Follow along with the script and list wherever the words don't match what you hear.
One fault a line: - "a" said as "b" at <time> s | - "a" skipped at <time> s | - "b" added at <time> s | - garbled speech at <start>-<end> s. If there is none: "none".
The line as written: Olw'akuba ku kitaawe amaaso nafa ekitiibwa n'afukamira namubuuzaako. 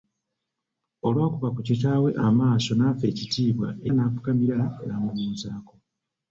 none